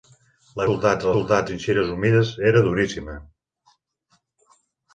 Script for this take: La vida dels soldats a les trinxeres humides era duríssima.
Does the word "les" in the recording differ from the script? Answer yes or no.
yes